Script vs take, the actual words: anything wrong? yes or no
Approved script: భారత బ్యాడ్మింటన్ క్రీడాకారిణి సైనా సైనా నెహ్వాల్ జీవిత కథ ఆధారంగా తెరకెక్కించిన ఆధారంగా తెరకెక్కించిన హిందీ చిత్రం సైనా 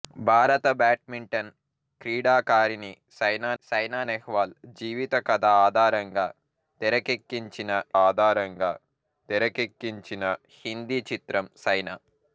no